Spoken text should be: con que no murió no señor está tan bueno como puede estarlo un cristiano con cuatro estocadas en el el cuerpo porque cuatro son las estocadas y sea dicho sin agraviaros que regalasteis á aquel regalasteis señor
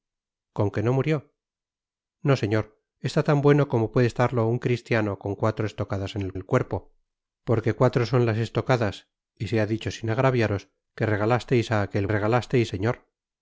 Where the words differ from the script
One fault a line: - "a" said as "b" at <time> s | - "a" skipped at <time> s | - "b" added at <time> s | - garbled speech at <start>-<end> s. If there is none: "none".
none